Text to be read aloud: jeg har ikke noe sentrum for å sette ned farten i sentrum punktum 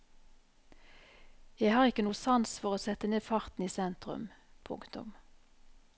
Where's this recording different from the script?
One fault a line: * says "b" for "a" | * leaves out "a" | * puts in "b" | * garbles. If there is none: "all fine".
* says "sans" for "sentrum"